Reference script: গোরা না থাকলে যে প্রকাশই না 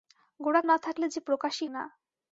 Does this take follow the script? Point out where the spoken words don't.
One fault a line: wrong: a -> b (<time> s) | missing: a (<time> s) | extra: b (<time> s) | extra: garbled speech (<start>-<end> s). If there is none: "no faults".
no faults